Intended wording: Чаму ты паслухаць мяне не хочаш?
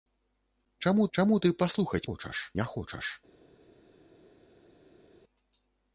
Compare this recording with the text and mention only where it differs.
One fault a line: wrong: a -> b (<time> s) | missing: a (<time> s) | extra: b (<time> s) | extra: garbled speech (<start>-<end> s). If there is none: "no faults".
extra: чаму (1.2 s)
wrong: мяне -> хочаш (2.1 s)